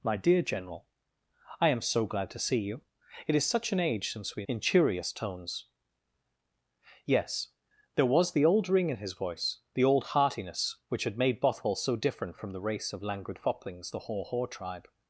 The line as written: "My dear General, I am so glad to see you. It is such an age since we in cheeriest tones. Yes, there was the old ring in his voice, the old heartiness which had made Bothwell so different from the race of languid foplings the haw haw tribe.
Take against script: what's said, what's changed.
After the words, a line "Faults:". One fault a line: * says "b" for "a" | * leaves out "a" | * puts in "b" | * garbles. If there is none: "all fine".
"My dear General, I am so glad to see you. It is such an age since we in cheeriest tones. Yes, there was the old ring in his voice, the old heartiness which had made Bothwell so different from the race of languid foplings the haw haw tribe.
Faults:
all fine